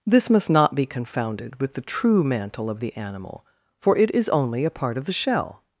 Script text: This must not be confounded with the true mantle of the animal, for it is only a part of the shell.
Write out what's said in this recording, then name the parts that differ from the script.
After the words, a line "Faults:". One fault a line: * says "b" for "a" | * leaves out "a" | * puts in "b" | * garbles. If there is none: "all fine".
This must not be confounded with the true mantle of the animal, for it is only a part of the shell.
Faults:
all fine